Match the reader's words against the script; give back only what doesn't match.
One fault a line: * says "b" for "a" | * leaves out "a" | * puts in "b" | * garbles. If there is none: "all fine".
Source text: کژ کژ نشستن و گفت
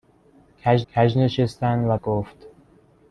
all fine